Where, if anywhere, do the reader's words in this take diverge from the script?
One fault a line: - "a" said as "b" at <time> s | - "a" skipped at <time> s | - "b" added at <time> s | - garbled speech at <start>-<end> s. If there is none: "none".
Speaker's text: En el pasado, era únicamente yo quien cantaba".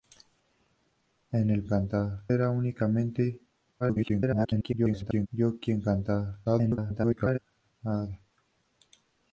- "pasado" said as "cantaba" at 1.7 s
- garbled speech at 3.8-5.3 s
- garbled speech at 6.4-7.4 s